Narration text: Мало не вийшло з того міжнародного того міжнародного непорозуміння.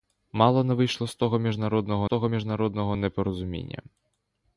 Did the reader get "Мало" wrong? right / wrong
right